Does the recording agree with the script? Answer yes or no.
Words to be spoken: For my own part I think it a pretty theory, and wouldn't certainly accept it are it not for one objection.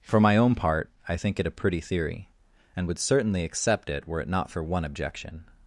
no